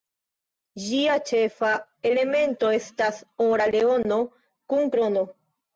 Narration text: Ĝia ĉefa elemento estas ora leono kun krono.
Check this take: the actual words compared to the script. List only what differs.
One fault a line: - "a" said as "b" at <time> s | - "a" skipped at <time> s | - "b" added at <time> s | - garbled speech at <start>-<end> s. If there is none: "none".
none